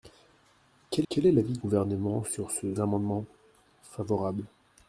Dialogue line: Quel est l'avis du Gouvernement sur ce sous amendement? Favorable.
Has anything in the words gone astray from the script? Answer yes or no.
yes